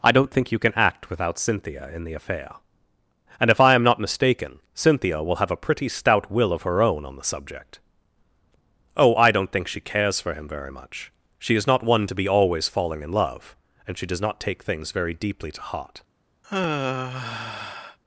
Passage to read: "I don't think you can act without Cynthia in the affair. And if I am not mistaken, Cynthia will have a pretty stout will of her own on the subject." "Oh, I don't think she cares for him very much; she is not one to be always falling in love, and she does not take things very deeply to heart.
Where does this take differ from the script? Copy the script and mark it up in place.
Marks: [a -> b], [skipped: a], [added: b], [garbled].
"I don't think you can act without Cynthia in the affair. And if I am not mistaken, Cynthia will have a pretty stout will of her own on the subject." "Oh, I don't think she cares for him very much; she is not one to be always falling in love, and she does not take things very deeply to heart.